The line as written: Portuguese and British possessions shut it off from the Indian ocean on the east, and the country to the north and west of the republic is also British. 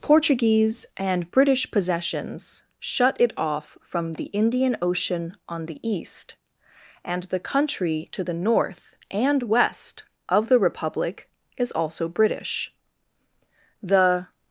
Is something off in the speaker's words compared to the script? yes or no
yes